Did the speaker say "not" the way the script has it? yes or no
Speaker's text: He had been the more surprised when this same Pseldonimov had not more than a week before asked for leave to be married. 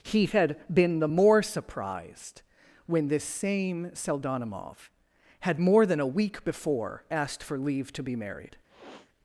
no